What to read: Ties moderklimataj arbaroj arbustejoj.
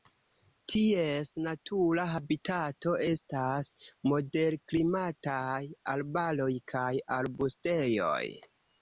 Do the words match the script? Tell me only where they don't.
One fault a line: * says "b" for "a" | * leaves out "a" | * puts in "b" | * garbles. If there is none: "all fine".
* puts in "natura habitato estas"
* puts in "kaj"